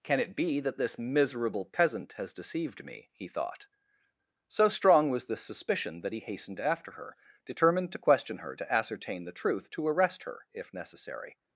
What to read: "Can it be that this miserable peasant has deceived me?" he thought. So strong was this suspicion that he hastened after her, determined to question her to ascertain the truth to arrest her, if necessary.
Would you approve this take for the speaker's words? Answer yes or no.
yes